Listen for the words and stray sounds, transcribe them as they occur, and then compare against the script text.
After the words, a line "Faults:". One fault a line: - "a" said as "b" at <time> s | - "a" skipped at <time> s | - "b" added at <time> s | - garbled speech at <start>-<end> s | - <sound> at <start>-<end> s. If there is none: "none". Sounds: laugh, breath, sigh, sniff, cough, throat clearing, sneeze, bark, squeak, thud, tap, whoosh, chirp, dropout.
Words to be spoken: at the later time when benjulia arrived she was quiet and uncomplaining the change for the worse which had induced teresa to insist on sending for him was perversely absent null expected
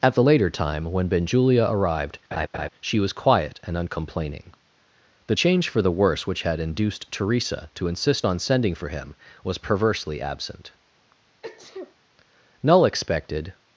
at the later time when benjulia arrived she was quiet and uncomplaining the change for the worse which had induced teresa to insist on sending for him was perversely absent null expected
Faults:
- laugh at 2.3-2.7 s
- sneeze at 11.4-11.9 s